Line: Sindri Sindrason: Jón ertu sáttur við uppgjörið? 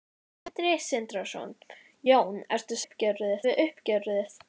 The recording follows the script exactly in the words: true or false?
false